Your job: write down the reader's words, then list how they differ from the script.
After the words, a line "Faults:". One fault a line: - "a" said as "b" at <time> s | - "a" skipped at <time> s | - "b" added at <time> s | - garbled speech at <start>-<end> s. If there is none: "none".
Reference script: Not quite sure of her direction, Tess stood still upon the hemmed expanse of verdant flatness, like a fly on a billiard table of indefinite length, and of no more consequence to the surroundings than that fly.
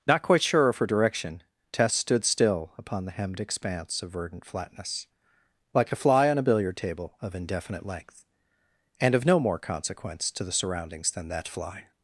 Not quite sure of her direction, Tess stood still upon the hemmed expanse of verdant flatness, like a fly on a billiard table of indefinite length, and of no more consequence to the surroundings than that fly.
Faults:
none